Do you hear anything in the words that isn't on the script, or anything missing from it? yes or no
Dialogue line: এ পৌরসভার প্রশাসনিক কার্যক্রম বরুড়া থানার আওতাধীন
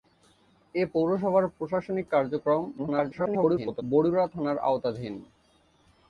yes